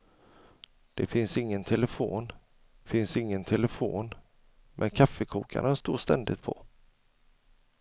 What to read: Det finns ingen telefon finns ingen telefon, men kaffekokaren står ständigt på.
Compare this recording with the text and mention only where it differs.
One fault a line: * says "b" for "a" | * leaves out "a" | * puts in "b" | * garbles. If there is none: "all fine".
all fine